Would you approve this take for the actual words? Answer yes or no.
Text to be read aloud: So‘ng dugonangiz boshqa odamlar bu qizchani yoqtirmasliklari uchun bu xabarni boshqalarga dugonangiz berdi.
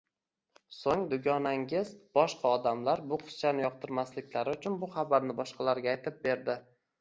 no